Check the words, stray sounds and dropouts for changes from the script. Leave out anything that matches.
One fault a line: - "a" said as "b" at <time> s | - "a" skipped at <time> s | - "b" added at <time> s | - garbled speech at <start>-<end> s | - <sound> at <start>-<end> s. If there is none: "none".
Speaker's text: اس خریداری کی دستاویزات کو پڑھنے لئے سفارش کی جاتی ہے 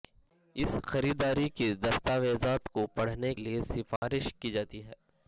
- dropout at 4.0-4.0 s